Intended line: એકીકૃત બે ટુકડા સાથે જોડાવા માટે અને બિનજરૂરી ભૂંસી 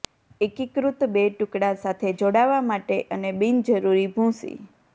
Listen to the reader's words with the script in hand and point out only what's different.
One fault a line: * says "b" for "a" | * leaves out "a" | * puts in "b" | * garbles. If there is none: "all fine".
all fine